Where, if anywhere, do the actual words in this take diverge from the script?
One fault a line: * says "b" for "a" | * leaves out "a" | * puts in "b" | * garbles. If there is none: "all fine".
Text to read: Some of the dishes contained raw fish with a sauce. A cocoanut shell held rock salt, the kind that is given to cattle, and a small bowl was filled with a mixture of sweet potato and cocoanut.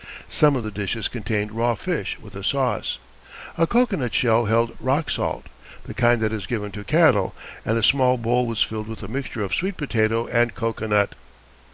all fine